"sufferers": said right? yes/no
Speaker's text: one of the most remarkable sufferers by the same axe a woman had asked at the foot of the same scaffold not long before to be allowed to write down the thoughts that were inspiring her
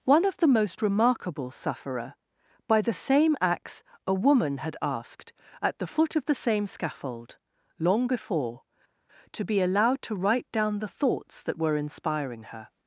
no